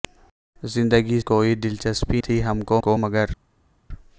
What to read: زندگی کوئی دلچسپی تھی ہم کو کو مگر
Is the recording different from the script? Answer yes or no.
no